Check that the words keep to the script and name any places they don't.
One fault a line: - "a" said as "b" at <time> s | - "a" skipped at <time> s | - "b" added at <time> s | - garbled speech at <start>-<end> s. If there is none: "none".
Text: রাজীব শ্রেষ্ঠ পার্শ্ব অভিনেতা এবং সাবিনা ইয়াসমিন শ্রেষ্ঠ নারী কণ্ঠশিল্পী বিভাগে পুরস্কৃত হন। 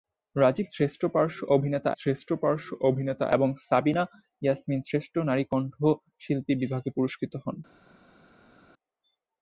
- "শ্রেষ্ঠ পার্শ্ব অভিনেতা" added at 2.0 s